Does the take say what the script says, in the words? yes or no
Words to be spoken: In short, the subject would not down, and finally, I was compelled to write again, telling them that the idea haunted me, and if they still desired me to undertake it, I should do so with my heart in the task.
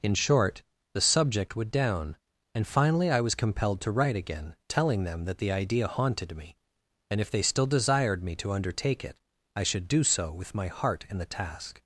no